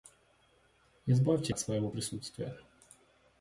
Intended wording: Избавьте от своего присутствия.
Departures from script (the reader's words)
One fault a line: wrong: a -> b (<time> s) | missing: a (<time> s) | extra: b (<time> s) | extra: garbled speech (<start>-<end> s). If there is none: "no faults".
no faults